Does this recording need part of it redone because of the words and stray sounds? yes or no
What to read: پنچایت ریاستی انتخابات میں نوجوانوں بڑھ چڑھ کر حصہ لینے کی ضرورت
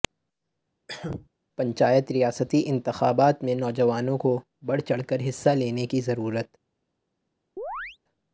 yes